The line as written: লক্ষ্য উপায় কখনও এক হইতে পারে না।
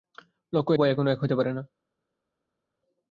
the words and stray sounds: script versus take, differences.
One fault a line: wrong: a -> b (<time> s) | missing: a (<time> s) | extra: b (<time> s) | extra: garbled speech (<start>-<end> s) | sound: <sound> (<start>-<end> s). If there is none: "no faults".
no faults